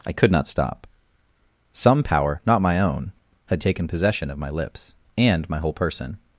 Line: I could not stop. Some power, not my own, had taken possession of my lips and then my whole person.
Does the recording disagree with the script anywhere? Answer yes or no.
yes